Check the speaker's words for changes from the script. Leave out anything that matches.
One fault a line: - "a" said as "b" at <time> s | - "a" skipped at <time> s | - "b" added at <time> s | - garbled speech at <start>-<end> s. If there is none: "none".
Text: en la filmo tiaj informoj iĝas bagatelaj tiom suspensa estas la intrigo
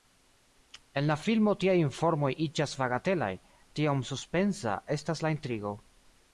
none